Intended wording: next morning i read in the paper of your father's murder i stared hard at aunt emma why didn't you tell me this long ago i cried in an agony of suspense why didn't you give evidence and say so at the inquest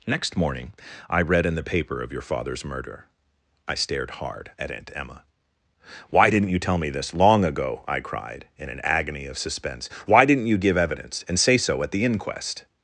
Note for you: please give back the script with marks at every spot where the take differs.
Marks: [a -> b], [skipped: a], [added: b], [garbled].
next morning i read in the paper of your father's murder i stared hard at aunt emma why didn't you tell me this long ago i cried in an agony of suspense why didn't you give evidence and say so at the inquest